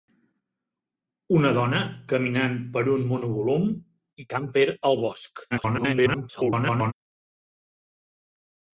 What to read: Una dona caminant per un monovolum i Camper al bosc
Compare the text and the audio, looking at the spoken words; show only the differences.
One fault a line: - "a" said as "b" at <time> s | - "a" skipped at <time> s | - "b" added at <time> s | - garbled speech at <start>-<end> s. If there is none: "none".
- garbled speech at 5.5-6.9 s